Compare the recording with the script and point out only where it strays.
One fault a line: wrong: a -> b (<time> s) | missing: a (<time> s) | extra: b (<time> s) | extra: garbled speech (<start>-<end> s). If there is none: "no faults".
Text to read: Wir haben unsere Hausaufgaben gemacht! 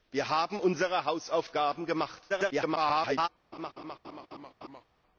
extra: garbled speech (2.3-3.3 s)